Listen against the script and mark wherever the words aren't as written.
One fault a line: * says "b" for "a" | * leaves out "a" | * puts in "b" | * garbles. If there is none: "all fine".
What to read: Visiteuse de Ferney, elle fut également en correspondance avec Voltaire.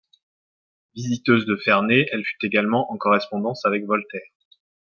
all fine